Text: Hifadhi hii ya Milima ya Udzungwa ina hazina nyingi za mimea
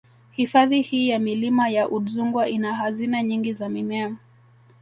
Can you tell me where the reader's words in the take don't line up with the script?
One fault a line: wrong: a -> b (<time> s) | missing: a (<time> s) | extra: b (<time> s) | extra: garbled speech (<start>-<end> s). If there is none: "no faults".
no faults